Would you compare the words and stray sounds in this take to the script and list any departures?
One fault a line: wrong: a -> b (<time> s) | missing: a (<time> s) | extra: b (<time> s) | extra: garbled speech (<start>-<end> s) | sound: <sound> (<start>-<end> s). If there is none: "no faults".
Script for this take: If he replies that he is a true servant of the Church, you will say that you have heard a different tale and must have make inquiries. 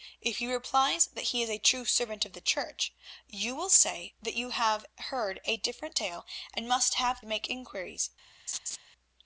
sound: laugh (8.5-8.8 s)